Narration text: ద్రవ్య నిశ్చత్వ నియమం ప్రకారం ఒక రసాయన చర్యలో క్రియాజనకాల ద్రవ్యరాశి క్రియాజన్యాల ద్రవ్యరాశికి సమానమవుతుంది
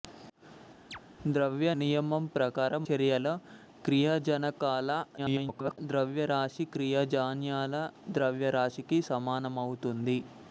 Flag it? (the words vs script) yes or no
yes